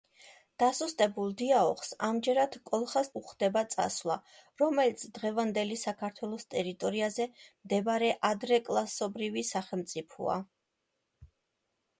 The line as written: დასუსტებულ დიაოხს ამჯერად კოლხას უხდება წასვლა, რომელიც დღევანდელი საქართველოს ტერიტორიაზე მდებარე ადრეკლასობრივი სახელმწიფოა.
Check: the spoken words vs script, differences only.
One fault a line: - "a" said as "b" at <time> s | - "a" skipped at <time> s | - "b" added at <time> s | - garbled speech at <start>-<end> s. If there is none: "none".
none